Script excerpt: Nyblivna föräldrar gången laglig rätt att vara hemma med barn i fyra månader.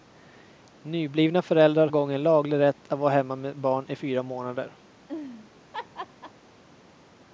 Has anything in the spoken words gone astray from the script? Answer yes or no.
no